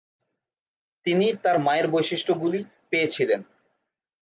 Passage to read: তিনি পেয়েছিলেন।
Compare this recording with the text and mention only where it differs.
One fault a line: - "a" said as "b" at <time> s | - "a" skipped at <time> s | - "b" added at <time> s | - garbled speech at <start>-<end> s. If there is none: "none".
- "তার মায়ের বৈশিষ্ট্যগুলি" added at 1.4 s